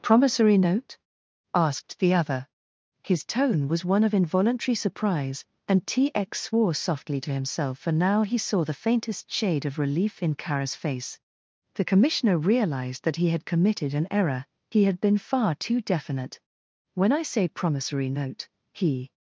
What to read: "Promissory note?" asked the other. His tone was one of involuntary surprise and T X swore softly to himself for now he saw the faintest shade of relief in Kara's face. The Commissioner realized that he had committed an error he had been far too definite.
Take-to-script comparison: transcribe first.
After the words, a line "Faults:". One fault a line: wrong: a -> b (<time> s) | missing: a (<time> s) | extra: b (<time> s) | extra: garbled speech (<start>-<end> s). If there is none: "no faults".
"Promissory note?" asked the other. His tone was one of involuntary surprise and T X swore softly to himself for now he saw the faintest shade of relief in Kara's face. The Commissioner realized that he had committed an error he had been far too definite. "When I say promissory note," he
Faults:
extra: When I say promissory note he (16.9 s)